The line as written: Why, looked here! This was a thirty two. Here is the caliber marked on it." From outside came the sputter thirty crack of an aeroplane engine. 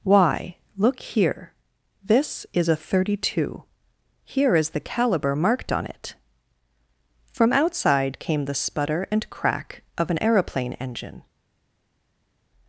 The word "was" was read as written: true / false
false